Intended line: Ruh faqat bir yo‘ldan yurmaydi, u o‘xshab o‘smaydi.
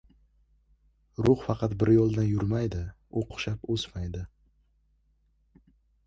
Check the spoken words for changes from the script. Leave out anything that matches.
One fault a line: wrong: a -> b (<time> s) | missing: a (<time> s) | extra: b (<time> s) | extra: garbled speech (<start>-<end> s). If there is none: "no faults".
no faults